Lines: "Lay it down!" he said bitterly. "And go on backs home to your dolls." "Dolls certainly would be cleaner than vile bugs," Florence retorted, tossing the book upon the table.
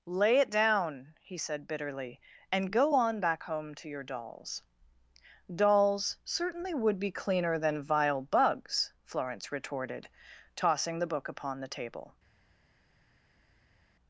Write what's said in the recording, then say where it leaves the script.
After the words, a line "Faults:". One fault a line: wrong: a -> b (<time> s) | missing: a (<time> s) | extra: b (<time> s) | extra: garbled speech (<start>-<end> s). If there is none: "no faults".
"Lay it down!" he said bitterly. "And go on back home to your dolls." "Dolls certainly would be cleaner than vile bugs," Florence retorted, tossing the book upon the table.
Faults:
wrong: backs -> back (3.2 s)